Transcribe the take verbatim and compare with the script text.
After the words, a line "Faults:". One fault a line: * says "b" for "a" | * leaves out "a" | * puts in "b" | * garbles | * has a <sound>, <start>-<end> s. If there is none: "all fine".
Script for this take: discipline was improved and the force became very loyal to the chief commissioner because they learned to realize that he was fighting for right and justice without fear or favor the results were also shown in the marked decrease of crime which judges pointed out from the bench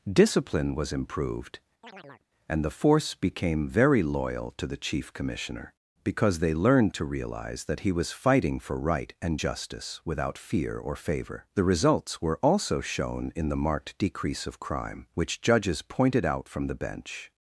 discipline was improved and the force became very loyal to the chief commissioner because they learned to realize that he was fighting for right and justice without fear or favor the results were also shown in the marked decrease of crime which judges pointed out from the bench
Faults:
* has a chirp, 1.8-2.3 s